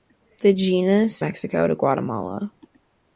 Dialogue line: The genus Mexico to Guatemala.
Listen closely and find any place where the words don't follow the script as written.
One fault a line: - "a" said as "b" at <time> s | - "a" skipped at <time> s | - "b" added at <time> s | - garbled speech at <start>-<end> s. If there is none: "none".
none